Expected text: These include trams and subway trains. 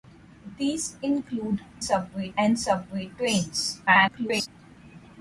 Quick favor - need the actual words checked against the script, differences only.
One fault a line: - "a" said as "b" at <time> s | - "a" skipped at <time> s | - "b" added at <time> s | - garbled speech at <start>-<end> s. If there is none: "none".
- "trams" said as "subway" at 1.8 s
- garbled speech at 3.9-4.5 s